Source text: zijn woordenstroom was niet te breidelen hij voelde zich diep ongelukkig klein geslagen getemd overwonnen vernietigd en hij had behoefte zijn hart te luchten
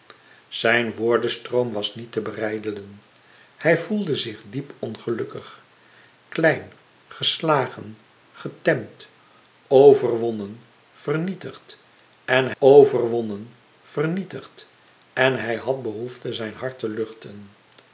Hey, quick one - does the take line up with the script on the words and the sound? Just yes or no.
no